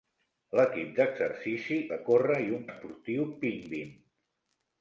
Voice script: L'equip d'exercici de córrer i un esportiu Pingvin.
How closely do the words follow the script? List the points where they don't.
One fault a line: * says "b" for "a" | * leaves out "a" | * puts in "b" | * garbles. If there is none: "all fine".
all fine